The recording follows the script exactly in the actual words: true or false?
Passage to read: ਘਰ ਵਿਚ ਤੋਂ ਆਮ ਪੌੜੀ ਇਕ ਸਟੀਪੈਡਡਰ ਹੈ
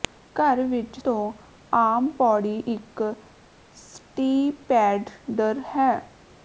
true